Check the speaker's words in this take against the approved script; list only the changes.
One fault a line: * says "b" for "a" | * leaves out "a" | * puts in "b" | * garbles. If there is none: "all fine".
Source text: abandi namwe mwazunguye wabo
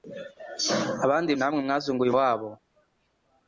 all fine